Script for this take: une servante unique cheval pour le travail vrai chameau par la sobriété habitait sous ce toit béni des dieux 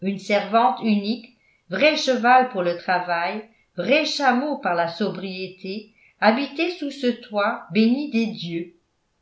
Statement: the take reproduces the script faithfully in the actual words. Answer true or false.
false